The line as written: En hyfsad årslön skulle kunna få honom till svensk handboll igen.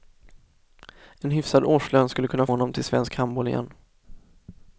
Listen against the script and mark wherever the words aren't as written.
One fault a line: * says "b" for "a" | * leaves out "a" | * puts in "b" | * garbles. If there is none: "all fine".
* leaves out "få"